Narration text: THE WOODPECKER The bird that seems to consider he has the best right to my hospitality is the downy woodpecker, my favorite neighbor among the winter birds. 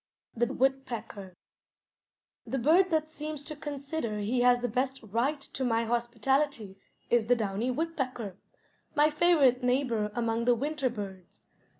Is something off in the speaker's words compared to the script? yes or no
no